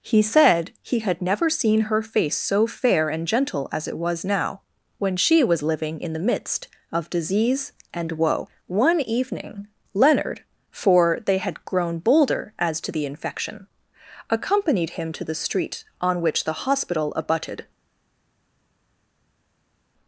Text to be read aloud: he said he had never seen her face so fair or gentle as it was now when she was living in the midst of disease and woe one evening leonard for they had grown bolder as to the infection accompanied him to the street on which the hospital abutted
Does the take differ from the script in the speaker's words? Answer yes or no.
yes